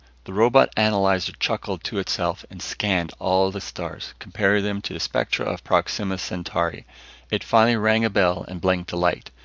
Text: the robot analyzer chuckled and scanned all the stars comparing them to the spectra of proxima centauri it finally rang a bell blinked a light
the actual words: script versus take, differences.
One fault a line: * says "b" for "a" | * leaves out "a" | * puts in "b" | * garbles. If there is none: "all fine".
* puts in "to itself"
* puts in "and"